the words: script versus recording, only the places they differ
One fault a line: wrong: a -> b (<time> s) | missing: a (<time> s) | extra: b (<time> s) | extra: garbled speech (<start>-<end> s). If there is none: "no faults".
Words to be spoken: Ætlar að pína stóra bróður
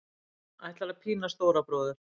no faults